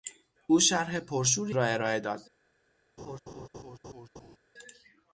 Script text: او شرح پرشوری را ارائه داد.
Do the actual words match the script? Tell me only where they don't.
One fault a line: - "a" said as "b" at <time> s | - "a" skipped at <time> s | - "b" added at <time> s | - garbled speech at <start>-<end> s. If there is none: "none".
none